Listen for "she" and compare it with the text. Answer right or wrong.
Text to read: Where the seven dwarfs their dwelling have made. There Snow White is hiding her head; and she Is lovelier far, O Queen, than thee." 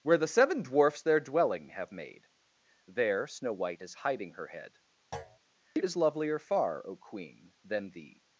wrong